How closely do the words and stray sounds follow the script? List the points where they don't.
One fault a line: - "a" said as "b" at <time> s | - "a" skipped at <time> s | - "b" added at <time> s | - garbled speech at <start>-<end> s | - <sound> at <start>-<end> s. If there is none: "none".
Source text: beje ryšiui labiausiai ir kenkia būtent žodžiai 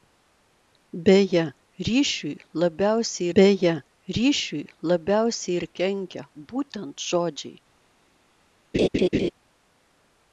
- "beje ryšiui labiausiai" added at 3.3 s
- laugh at 8.7-9.3 s